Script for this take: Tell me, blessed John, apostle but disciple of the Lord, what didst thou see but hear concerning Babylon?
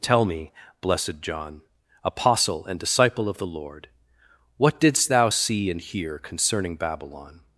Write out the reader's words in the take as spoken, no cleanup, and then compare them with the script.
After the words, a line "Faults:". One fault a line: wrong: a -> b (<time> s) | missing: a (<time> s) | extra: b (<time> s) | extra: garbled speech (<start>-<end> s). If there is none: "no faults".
Tell me, blessed John, apostle and disciple of the Lord, what didst thou see and hear concerning Babylon?
Faults:
wrong: but -> and (2.6 s)
wrong: but -> and (5.7 s)